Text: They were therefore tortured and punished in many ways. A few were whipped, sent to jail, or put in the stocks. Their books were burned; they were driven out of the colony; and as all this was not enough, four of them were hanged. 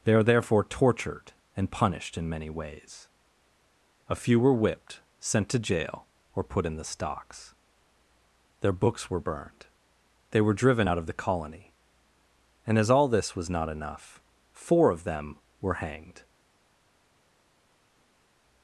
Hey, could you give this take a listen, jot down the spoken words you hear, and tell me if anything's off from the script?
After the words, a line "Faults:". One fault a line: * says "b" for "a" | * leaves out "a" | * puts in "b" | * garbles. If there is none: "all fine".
They are therefore tortured and punished in many ways. A few were whipped, sent to jail, or put in the stocks. Their books were burned; they were driven out of the colony; and as all this was not enough, four of them were hanged.
Faults:
* says "are" for "were"